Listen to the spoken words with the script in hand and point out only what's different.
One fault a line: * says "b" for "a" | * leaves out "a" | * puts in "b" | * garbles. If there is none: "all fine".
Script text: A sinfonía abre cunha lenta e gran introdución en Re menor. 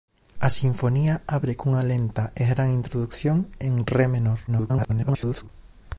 * garbles